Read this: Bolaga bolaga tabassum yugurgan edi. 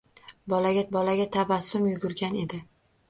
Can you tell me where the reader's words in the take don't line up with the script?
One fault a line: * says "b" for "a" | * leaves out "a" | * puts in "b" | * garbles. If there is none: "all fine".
all fine